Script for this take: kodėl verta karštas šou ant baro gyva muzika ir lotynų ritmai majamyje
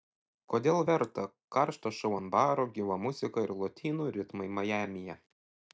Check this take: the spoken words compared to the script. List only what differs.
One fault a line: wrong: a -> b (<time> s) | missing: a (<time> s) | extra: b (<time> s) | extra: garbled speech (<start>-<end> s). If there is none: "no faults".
no faults